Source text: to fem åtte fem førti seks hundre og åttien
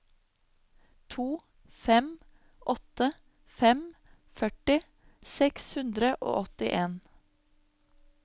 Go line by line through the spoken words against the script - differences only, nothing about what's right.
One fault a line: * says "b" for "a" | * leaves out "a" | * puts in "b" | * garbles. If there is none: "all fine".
all fine